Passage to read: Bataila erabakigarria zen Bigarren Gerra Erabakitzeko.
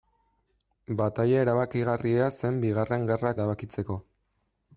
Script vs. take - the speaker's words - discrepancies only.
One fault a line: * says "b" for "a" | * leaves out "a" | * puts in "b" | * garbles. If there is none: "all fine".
all fine